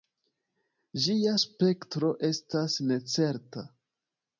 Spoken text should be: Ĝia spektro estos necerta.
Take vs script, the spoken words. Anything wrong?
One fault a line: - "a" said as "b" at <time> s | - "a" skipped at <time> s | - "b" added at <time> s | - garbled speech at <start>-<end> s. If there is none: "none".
- "estos" said as "estas" at 2.3 s